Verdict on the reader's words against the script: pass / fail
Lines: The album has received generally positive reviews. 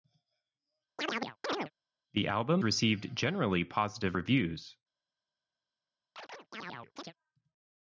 fail